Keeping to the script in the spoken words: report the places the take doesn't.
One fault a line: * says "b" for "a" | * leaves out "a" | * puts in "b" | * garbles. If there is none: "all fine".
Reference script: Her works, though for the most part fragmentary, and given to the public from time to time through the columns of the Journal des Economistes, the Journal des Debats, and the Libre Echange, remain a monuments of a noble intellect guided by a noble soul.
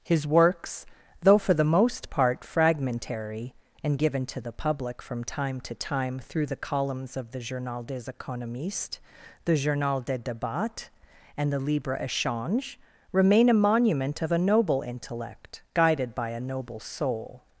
* says "His" for "Her"
* says "monument" for "monuments"